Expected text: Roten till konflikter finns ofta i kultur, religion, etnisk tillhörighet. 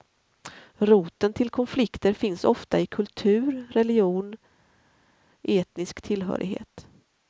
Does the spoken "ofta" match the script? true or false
true